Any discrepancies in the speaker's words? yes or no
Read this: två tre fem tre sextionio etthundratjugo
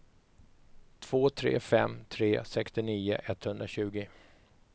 no